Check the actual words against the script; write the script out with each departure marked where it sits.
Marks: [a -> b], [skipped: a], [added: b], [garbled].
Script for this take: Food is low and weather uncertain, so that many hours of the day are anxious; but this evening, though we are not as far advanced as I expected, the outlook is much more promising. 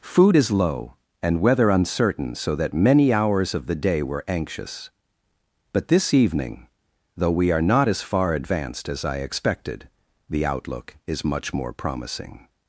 Food is low and weather uncertain, so that many hours of the day [are -> were] anxious; but this evening, though we are not as far advanced as I expected, the outlook is much more promising.